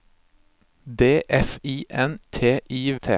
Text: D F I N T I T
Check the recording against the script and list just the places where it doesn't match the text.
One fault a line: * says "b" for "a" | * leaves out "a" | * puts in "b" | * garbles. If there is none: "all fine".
all fine